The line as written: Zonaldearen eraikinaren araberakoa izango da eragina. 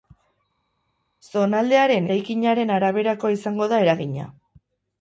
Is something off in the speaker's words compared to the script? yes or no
no